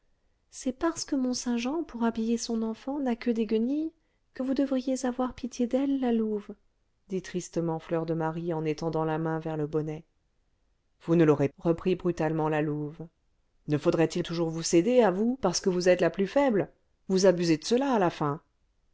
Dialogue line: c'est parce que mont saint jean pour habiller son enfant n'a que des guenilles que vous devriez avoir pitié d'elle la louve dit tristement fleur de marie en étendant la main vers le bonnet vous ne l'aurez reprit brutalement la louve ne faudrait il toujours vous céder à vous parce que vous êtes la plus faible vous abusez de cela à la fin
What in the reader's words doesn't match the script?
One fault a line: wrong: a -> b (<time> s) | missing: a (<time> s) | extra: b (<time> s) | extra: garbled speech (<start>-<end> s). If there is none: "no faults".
no faults